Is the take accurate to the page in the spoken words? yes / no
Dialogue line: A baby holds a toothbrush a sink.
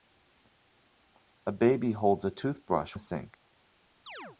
yes